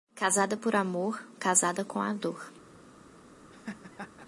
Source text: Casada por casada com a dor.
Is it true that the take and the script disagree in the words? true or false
true